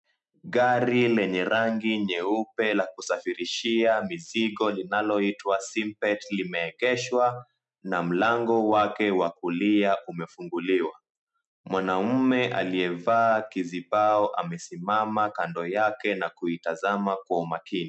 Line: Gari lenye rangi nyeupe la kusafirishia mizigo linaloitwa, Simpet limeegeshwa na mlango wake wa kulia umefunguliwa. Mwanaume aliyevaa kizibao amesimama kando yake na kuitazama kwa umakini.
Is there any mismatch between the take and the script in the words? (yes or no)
no